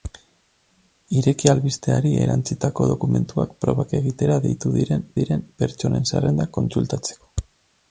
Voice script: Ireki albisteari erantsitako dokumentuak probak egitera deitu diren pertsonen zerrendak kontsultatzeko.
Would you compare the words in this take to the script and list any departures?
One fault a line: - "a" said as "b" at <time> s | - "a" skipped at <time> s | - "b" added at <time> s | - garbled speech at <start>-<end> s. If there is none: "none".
- "diren" added at 5.2 s